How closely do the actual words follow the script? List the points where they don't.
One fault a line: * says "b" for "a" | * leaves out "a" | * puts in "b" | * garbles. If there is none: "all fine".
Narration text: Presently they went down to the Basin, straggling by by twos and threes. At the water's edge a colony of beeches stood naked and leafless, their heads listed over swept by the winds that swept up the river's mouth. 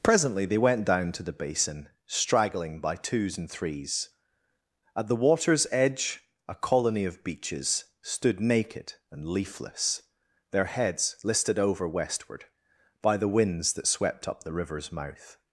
* leaves out "by"
* says "westward" for "swept"